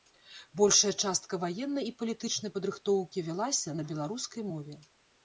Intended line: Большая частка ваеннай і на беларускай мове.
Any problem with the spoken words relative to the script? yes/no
yes